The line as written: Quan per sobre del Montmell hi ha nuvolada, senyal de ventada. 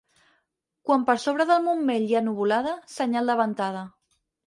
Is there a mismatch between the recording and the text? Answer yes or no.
no